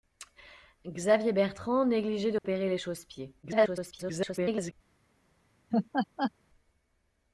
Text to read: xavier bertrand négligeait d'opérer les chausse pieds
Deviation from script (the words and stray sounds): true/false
true